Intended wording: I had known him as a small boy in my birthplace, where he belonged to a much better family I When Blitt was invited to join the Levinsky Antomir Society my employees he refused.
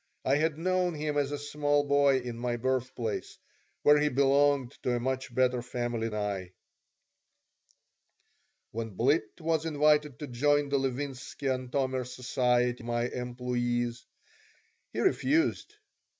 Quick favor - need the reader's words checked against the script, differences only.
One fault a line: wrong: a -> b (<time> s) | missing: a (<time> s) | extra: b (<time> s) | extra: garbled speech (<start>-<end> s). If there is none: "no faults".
no faults